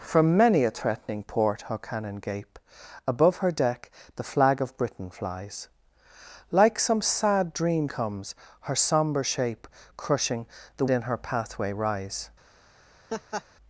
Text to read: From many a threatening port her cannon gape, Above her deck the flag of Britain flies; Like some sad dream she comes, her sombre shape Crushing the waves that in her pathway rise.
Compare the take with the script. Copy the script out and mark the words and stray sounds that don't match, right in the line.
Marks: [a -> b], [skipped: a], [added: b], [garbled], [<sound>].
From many a threatening port her cannon gape, Above her deck the flag of Britain flies; Like some sad dream [skipped: she] comes, her sombre shape Crushing the [skipped: waves that] in her pathway rise. [laugh]